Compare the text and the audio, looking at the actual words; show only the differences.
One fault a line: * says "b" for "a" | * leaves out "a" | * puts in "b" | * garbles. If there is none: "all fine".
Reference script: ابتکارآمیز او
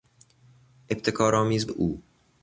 all fine